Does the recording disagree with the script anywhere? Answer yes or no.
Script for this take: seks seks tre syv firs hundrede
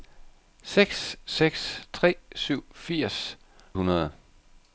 no